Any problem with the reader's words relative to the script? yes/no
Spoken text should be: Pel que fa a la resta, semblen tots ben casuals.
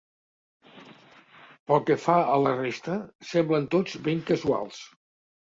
no